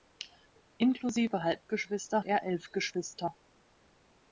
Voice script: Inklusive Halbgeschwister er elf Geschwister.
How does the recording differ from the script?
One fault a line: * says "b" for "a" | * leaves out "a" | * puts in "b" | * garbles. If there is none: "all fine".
all fine